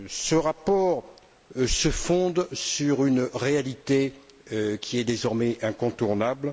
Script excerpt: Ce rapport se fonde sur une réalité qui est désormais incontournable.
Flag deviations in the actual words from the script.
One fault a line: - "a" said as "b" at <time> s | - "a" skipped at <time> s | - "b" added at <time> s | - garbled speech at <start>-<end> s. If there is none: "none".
none